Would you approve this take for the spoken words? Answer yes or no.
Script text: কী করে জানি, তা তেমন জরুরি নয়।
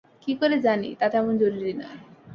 yes